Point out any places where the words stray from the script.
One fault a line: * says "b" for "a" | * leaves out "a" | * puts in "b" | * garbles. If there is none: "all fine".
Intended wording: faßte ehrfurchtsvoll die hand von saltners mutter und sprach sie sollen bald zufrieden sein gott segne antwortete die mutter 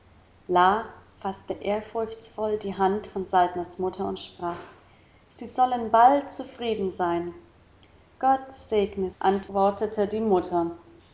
all fine